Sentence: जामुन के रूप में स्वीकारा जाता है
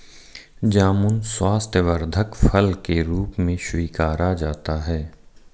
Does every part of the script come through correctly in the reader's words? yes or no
no